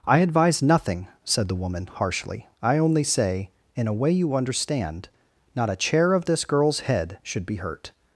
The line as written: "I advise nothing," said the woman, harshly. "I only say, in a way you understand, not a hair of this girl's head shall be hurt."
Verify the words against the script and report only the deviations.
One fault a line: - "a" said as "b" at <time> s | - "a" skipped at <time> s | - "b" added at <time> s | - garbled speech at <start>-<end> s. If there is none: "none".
- "hair" said as "chair" at 5.8 s
- "shall" said as "should" at 7.2 s